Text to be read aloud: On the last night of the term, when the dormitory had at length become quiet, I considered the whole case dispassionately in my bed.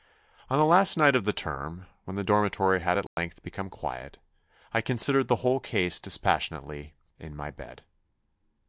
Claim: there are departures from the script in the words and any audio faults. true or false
true